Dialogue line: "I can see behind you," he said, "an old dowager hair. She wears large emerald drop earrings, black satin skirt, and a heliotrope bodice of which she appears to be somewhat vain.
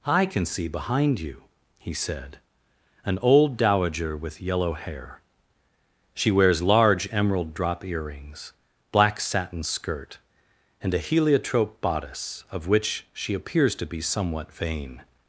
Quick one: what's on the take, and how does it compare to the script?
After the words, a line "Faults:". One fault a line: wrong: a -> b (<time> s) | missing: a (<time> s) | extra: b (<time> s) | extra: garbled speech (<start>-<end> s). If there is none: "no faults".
"I can see behind you," he said, "an old dowager with yellow hair. She wears large emerald drop earrings, black satin skirt, and a heliotrope bodice of which she appears to be somewhat vain.
Faults:
extra: with yellow (4.2 s)